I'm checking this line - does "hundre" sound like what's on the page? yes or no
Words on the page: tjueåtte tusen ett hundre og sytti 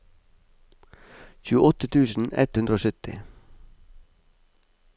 yes